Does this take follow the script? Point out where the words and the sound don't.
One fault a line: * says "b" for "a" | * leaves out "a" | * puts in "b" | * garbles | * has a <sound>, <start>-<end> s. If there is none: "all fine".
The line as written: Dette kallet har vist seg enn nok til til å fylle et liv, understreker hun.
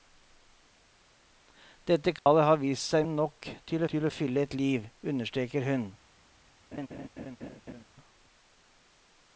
* has a dropout, 2.2-2.3 s
* has a laugh, 6.7-7.8 s